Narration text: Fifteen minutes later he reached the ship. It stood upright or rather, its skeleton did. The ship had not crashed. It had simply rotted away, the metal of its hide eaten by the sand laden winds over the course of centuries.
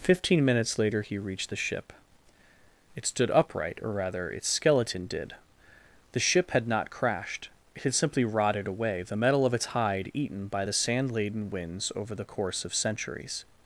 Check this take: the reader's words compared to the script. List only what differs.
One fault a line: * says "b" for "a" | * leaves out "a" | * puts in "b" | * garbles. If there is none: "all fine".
all fine